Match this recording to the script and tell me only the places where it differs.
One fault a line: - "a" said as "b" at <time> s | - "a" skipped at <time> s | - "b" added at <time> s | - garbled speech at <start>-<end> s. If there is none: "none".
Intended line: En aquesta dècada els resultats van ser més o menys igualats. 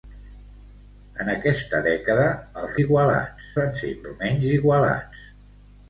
- "resultats" said as "igualats" at 2.8 s
- "més" skipped at 3.9 s